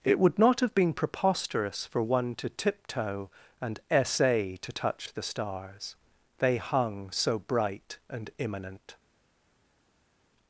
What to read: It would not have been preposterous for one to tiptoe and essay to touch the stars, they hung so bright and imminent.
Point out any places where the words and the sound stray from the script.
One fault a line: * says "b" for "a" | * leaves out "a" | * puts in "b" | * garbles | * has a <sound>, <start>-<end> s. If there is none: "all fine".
all fine